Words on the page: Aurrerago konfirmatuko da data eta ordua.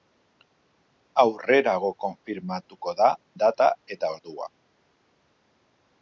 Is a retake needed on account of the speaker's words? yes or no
no